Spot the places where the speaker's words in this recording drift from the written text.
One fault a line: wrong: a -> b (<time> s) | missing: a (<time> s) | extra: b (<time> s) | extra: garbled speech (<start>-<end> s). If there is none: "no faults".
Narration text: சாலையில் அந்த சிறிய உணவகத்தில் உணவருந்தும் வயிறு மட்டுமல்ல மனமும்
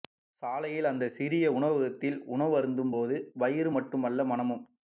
extra: போது (2.9 s)